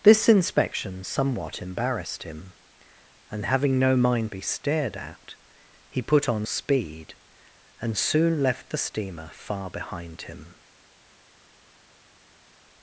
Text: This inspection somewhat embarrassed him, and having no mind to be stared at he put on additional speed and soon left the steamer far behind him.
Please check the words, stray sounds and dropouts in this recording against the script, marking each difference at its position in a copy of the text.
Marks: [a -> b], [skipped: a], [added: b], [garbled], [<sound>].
This inspection somewhat embarrassed him, and having no mind [skipped: to] be stared at he put on [skipped: additional] speed and soon left the steamer far behind him.